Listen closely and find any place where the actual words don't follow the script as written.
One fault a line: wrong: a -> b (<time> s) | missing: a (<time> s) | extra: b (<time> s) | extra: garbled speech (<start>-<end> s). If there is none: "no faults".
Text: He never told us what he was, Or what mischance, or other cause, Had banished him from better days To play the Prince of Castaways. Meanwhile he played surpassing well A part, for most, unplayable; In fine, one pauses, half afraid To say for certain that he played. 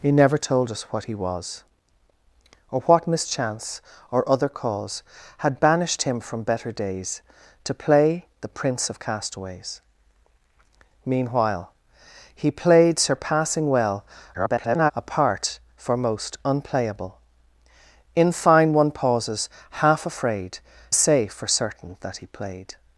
extra: garbled speech (14.3-14.9 s)
missing: To (20.6 s)